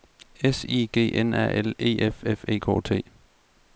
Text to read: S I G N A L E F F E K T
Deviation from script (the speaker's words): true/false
false